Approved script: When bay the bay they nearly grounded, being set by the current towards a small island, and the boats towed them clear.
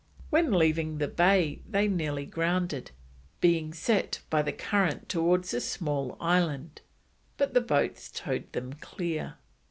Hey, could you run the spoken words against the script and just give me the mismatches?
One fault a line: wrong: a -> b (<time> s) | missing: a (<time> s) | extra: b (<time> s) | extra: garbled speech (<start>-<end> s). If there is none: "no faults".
wrong: bay -> leaving (0.5 s)
wrong: and -> but (7.4 s)